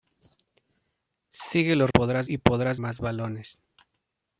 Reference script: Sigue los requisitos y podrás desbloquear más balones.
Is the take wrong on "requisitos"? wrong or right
wrong